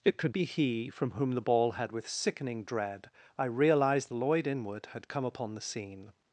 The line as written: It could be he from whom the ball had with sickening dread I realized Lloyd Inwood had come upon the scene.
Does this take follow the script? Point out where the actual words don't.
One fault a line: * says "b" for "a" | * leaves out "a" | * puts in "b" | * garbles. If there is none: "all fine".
all fine